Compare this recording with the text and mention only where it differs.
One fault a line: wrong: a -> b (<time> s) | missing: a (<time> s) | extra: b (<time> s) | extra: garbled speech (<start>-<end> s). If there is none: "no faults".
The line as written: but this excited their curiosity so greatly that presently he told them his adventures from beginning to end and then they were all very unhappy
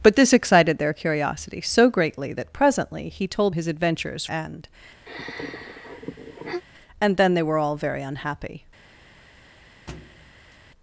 missing: them (3.5 s)
missing: from beginning to (4.3 s)